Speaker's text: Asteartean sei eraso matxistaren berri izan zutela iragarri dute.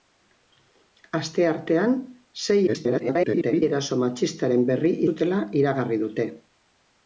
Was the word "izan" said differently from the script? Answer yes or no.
yes